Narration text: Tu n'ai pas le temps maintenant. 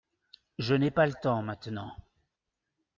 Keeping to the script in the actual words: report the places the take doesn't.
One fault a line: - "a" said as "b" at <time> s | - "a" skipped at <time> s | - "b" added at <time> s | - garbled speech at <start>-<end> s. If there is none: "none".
- "Tu" said as "Je" at 0.6 s